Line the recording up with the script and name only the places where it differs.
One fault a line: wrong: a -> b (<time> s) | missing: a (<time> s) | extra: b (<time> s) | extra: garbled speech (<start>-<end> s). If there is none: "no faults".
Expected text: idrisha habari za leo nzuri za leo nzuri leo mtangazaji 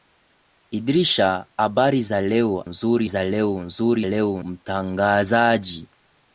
no faults